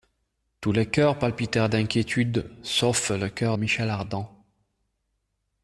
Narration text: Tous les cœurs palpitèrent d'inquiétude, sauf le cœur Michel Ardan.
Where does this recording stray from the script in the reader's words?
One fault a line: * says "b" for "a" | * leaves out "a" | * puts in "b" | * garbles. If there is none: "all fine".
all fine